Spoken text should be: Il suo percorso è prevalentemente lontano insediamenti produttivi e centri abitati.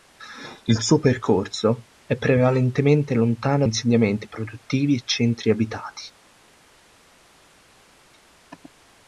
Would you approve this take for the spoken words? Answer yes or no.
yes